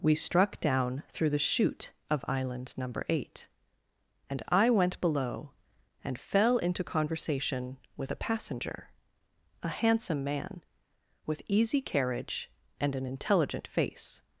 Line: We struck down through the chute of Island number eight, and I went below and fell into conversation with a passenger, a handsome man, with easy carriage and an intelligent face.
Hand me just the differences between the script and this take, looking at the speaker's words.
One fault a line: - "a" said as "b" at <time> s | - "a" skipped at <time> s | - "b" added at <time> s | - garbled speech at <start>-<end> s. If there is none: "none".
none